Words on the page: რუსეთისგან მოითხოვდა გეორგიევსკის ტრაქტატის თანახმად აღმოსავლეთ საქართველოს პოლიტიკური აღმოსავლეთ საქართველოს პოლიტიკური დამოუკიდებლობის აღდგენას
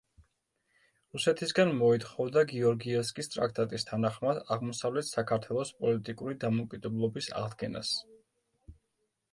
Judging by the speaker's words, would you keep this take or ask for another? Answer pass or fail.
fail